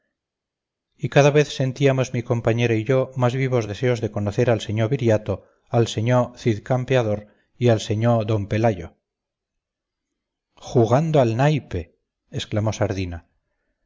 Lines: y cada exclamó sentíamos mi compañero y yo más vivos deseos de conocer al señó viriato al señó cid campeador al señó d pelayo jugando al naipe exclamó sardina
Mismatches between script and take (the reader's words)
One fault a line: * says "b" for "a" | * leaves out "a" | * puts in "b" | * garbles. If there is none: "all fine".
* says "vez" for "exclamó"
* puts in "y"